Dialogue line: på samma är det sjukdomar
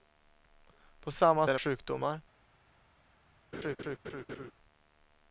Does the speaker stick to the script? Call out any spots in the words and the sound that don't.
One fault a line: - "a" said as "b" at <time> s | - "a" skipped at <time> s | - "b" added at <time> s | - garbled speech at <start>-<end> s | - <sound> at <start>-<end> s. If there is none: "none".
- laugh at 3.5-4.5 s